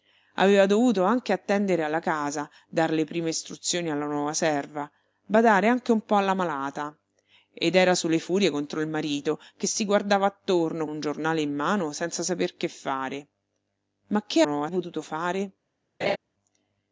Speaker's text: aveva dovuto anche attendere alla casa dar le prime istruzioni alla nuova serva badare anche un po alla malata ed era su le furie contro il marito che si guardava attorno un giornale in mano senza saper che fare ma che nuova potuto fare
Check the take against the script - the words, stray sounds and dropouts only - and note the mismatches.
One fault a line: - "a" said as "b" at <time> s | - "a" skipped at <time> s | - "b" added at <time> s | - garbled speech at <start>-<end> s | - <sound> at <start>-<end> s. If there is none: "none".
- laugh at 16.0-16.2 s